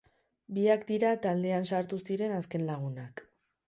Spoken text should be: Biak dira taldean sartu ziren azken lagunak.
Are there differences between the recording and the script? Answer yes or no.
no